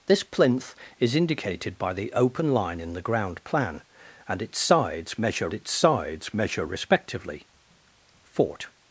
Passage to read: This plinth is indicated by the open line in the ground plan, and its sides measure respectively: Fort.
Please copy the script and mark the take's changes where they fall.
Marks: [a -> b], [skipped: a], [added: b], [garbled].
This plinth is indicated by the open line in the ground plan, and its sides measure [added: its sides measure] respectively: Fort.